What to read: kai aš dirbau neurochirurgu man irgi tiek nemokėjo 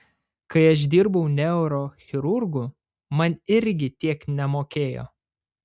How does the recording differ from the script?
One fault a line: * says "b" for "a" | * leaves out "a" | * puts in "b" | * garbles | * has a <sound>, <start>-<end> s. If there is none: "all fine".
all fine